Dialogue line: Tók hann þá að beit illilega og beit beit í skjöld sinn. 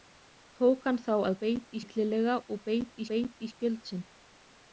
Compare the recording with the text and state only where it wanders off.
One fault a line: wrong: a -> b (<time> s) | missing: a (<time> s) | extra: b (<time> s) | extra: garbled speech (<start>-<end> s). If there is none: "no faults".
no faults